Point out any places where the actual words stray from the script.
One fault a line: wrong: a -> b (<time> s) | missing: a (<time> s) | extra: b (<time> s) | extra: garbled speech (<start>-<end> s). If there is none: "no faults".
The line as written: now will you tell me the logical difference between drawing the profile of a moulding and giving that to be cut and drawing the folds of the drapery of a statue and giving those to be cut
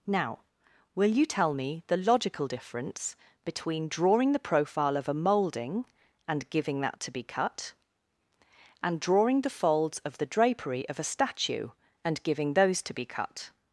no faults